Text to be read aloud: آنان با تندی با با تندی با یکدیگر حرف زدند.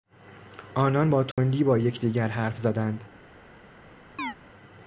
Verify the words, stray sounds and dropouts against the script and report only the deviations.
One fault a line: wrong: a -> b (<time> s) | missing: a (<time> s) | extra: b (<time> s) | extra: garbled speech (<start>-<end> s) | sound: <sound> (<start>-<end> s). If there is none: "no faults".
sound: dropout (1.3-1.4 s)
missing: با تندی با (1.8 s)
sound: chirp (4.2-4.3 s)